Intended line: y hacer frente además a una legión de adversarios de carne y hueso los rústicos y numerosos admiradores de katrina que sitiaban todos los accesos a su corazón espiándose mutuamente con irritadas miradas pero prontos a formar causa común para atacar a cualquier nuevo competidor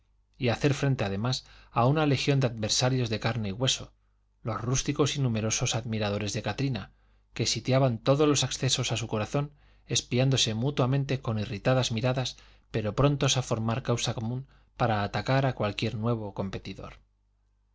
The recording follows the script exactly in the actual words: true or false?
true